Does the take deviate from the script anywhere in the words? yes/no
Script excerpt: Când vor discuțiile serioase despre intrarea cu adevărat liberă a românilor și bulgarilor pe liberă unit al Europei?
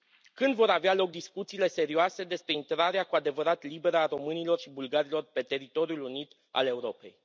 yes